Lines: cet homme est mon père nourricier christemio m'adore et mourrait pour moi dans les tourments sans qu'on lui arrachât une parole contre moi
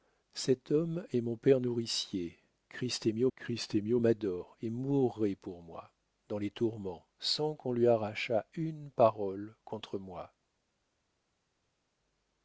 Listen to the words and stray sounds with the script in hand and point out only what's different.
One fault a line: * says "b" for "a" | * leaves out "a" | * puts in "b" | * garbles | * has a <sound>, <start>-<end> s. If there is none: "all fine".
* puts in "christemio"